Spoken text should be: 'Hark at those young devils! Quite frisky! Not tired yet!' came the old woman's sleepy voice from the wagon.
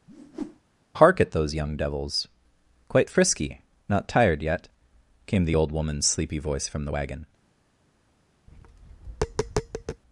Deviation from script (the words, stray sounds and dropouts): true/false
true